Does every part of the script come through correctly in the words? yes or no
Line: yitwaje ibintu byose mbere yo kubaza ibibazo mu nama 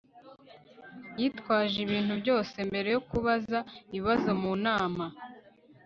yes